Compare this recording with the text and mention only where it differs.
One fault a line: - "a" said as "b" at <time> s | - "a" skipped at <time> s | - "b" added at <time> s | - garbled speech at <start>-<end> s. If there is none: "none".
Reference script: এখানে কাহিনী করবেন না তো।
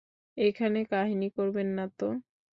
none